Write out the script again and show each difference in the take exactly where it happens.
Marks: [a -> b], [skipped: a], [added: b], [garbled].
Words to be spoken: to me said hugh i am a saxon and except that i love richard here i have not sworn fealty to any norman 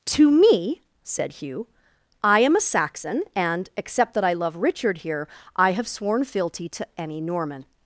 to me said hugh i am a saxon and except that i love richard here i have [skipped: not] sworn fealty to any norman